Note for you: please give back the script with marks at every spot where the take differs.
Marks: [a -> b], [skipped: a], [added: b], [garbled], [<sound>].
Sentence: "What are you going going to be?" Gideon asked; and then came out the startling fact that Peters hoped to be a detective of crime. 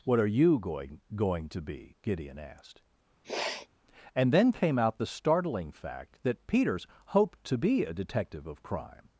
"What are you going going to be?" Gideon asked; [sniff] and then came out the startling fact that Peters hoped to be a detective of crime.